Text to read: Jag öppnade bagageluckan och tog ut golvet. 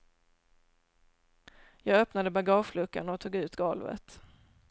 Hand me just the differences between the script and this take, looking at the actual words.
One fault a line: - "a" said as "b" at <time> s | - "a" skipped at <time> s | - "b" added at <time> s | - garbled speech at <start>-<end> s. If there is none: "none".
none